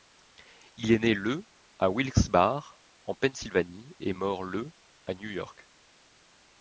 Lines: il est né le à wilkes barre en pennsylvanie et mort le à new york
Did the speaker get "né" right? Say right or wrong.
right